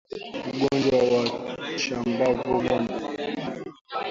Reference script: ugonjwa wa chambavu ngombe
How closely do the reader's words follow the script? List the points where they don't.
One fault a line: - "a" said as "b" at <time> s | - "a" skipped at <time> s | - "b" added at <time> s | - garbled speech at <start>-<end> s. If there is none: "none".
none